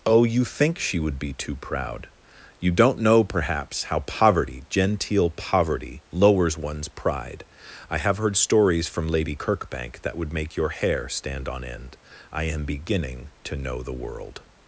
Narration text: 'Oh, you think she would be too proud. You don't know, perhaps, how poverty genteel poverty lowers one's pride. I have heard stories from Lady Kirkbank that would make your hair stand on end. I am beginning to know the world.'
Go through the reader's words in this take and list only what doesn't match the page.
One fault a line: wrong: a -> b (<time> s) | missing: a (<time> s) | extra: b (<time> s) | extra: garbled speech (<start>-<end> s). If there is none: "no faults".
no faults